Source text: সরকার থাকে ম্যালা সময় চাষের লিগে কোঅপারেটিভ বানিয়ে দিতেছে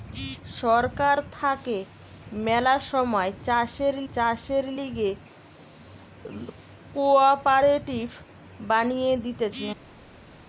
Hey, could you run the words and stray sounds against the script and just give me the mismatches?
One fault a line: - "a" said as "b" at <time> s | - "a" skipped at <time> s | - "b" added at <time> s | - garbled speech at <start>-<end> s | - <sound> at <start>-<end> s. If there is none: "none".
- "চাষের" added at 4.1 s